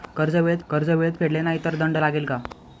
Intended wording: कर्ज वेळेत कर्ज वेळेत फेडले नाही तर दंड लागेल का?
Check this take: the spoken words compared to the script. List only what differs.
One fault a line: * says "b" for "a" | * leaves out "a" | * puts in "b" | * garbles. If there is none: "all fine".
all fine